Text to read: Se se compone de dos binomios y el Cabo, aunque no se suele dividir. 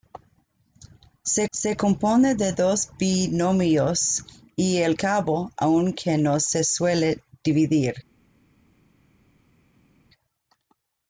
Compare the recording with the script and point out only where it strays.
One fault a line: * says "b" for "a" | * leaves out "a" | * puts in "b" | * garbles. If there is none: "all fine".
all fine